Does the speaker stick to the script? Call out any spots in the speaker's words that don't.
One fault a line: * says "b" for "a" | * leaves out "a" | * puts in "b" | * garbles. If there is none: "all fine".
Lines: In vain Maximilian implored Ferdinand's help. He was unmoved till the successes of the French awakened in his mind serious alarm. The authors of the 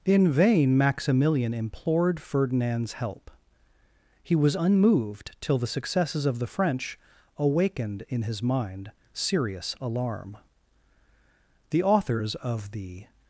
all fine